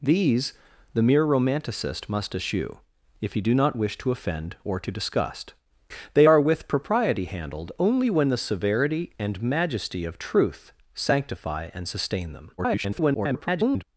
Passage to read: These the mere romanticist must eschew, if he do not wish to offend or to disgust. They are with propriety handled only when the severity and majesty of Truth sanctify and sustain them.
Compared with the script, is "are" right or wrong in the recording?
right